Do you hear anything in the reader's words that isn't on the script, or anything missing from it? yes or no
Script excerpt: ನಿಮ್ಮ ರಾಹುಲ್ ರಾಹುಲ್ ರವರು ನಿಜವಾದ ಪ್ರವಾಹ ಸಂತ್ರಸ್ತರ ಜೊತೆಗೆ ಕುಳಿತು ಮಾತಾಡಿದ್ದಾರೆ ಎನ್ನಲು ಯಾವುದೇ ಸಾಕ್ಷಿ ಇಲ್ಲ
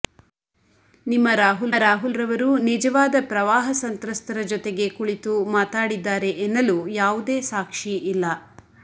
no